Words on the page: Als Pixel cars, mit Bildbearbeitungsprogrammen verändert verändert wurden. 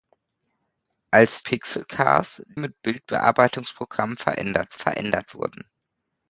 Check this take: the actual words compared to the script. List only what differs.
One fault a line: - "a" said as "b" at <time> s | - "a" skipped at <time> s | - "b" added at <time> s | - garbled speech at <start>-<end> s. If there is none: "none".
none